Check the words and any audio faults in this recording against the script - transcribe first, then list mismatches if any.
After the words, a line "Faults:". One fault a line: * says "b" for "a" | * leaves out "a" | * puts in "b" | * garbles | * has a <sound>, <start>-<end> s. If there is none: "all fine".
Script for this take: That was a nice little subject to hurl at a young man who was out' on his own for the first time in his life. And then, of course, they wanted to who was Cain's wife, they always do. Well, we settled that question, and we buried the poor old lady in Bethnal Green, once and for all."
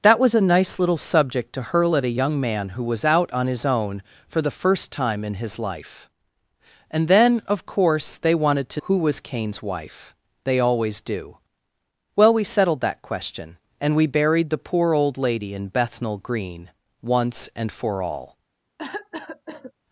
That was a nice little subject to hurl at a young man who was out' on his own for the first time in his life. And then, of course, they wanted to who was Cain's wife, they always do. Well, we settled that question, and we buried the poor old lady in Bethnal Green, once and for all."
Faults:
* has a cough, 18.8-19.7 s